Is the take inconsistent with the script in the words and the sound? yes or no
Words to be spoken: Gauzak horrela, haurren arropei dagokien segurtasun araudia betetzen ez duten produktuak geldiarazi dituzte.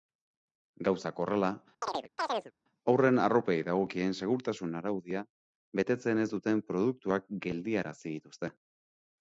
yes